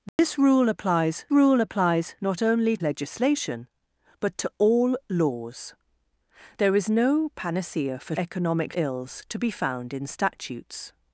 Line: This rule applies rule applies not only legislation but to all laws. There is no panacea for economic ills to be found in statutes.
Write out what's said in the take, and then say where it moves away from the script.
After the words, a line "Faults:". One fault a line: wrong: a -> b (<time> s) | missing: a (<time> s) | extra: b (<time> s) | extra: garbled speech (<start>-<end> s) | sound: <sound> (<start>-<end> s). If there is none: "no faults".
This rule applies rule applies not only legislation but to all laws. There is no panacea for economic ills to be found in statutes.
Faults:
sound: dropout (0.1-0.2 s)